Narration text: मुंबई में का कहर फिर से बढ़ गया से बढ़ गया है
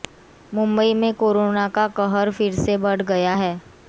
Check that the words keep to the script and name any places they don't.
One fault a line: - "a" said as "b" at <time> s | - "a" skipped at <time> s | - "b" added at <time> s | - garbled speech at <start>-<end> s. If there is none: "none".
- "कोरोना" added at 1.1 s
- "से बढ़ गया" skipped at 3.4 s